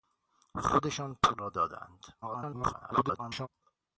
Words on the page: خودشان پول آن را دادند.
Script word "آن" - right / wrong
wrong